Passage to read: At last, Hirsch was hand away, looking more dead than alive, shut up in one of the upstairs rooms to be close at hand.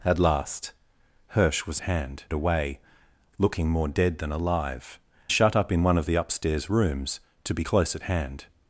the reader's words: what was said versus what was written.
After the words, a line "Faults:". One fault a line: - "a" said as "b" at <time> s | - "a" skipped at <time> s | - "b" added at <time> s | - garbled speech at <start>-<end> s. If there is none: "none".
At last, Hirsch was hand away, looking more dead than alive, shut up in one of the upstairs rooms to be close at hand.
Faults:
none